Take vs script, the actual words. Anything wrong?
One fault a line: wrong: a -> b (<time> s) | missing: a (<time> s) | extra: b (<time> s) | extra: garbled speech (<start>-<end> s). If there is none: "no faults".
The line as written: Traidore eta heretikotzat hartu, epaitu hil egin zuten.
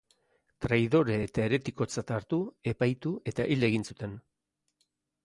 extra: eta (3.3 s)